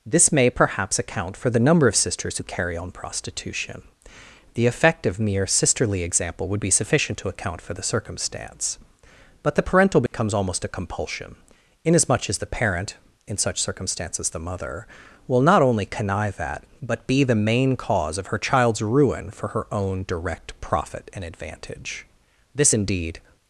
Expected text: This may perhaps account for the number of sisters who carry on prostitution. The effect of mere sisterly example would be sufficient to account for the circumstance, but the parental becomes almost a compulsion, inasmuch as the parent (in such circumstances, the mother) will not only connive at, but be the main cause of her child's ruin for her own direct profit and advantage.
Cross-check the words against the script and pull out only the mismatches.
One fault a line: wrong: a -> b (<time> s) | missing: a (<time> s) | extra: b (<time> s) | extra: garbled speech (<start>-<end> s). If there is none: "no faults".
extra: This indeed (22.5 s)